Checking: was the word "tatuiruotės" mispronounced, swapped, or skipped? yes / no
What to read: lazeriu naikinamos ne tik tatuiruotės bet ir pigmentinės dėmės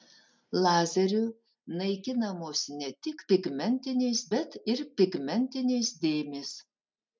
yes